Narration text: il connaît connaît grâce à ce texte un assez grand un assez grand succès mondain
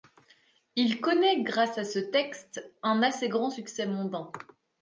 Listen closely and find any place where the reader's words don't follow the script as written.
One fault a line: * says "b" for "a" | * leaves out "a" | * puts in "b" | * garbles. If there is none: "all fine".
* leaves out "connaît"
* leaves out "un assez grand"